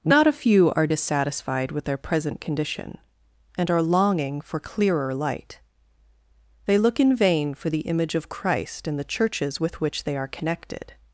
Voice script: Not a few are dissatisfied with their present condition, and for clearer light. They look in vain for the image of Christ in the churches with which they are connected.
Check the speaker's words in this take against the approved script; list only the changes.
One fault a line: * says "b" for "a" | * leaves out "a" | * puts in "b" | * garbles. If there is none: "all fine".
* puts in "are longing"